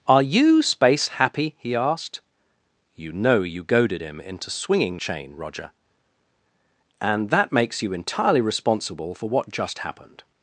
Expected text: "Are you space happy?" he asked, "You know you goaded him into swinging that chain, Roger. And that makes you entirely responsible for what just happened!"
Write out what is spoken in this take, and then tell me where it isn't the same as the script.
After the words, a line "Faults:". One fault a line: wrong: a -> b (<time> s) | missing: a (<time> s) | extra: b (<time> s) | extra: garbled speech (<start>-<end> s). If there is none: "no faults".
"Are you space happy?" he asked, "You know you goaded him into swinging chain, Roger. And that makes you entirely responsible for what just happened!"
Faults:
missing: that (5.0 s)